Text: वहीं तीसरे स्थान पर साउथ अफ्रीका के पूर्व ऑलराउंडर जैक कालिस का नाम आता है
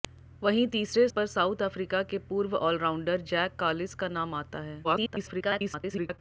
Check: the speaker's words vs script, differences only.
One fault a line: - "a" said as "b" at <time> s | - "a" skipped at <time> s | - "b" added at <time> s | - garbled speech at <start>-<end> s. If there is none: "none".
- "स्थान" skipped at 1.1 s
- garbled speech at 4.8-6.2 s